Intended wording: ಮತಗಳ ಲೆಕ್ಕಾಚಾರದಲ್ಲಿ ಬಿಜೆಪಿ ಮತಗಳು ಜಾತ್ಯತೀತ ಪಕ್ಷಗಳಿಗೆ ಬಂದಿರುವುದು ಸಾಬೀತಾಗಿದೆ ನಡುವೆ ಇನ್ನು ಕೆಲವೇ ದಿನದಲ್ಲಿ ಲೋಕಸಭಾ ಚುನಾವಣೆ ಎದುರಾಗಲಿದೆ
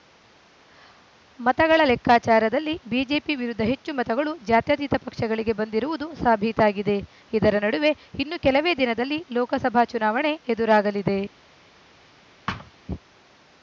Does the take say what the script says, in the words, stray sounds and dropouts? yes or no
no